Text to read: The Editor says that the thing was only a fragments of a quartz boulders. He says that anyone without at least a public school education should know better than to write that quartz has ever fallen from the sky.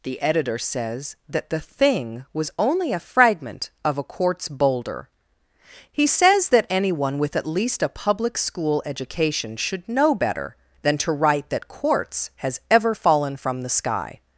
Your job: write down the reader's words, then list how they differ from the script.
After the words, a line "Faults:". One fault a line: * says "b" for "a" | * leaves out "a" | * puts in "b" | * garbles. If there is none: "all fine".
The Editor says that the thing was only a fragment of a quartz boulder. He says that anyone with at least a public school education should know better than to write that quartz has ever fallen from the sky.
Faults:
* says "fragment" for "fragments"
* says "boulder" for "boulders"
* says "with" for "without"